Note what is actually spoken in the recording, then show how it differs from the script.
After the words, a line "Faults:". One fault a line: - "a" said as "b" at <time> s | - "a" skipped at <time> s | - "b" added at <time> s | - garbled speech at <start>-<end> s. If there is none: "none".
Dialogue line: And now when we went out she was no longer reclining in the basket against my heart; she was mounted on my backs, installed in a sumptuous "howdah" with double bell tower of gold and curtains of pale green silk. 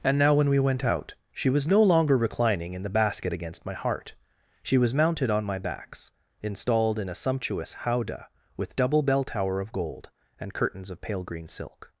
And now when we went out she was no longer reclining in the basket against my heart; she was mounted on my backs, installed in a sumptuous "howdah" with double bell tower of gold and curtains of pale green silk.
Faults:
none